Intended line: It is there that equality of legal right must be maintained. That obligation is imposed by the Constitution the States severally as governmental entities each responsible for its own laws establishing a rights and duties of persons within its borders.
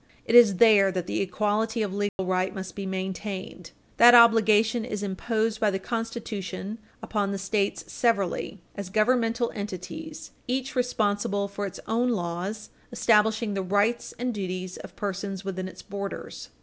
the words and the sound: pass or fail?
fail